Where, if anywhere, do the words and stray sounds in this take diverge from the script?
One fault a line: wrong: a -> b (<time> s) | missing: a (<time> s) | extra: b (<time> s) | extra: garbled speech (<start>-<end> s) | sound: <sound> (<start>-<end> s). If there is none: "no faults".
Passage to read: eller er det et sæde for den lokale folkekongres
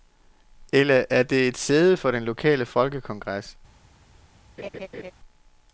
sound: laugh (4.6-5.1 s)